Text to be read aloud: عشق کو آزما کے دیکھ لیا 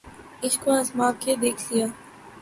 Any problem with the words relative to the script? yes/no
no